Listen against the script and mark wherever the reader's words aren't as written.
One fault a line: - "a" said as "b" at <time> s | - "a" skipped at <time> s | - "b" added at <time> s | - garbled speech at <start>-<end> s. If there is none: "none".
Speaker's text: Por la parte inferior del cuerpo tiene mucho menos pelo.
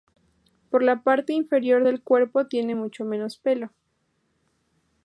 none